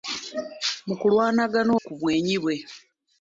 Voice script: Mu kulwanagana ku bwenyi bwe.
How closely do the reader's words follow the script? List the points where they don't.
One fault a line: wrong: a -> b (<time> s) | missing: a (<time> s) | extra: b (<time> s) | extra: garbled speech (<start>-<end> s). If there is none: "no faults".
no faults